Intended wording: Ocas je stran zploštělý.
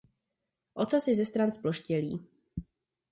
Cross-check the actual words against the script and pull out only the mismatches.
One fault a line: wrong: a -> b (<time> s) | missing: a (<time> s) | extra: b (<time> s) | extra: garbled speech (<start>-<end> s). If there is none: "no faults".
extra: ze (1.1 s)